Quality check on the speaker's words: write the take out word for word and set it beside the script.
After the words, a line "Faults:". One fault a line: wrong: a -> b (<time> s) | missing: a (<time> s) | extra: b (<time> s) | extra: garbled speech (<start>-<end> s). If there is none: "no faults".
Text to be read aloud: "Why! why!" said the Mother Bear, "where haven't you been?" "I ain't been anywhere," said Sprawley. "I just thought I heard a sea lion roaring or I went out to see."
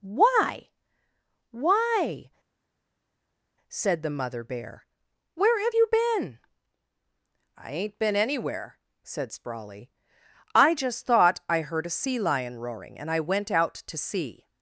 "Why! why!" said the Mother Bear, "where have you been?" "I ain't been anywhere," said Sprawley. "I just thought I heard a sea lion roaring and I went out to see."
Faults:
wrong: haven't -> have (5.6 s)
wrong: or -> and (13.0 s)